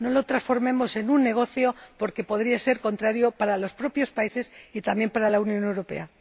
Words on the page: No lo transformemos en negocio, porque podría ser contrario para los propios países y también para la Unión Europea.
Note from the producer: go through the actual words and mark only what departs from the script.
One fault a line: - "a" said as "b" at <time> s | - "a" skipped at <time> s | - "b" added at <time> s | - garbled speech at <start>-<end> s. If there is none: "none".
- "un" added at 1.1 s